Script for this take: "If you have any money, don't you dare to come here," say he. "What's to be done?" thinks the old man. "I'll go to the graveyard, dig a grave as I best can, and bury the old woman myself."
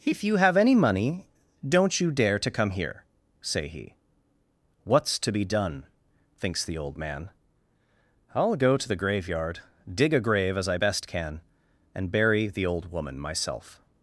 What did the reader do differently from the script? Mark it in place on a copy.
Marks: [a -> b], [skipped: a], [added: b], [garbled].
"If you have any money, don't you dare to come here," say he. "What's to be done?" thinks the old man. "I'll go to the graveyard, dig a grave as I best can, and bury the old woman myself."